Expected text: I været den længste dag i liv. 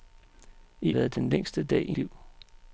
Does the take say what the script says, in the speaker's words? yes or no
yes